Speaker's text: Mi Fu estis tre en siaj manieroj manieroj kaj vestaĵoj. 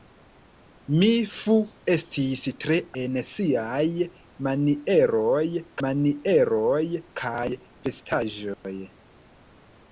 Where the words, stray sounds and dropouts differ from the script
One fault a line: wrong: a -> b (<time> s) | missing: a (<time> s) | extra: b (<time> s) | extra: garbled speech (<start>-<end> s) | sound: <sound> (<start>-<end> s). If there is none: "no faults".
sound: dropout (8.5-8.6 s)